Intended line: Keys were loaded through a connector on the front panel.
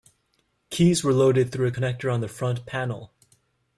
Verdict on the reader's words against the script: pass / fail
pass